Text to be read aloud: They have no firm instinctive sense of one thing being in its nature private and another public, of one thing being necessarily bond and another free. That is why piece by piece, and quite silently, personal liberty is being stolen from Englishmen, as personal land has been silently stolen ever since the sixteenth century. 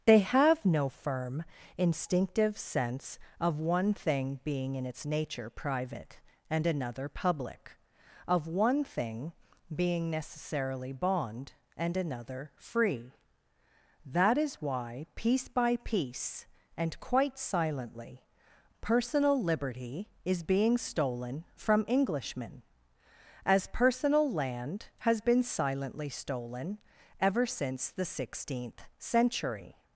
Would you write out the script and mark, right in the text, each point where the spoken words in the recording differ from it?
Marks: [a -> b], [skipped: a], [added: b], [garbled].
They have no firm instinctive sense of one thing being in its nature private and another public, of one thing being necessarily bond and another free. That is why piece by piece, and quite silently, personal liberty is being stolen from Englishmen, as personal land has been silently stolen ever since the sixteenth century.